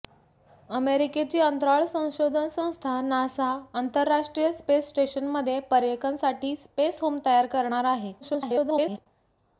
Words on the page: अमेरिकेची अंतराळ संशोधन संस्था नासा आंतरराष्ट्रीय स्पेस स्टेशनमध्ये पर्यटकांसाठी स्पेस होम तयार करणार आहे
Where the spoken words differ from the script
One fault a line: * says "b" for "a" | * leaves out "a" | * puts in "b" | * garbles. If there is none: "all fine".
* garbles